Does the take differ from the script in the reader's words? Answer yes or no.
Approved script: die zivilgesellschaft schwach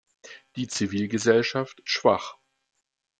no